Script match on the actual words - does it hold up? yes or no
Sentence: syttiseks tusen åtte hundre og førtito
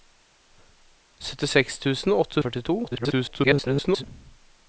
no